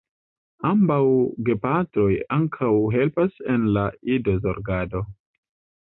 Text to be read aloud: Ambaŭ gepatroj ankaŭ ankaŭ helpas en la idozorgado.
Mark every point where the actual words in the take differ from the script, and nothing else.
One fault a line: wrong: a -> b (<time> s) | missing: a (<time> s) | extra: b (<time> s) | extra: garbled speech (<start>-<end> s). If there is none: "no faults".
missing: ankaŭ (2.7 s)